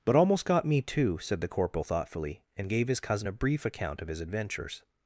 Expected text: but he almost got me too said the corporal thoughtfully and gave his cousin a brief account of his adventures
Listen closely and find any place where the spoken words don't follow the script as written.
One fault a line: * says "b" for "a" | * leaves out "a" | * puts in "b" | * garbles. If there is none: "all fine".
* leaves out "he"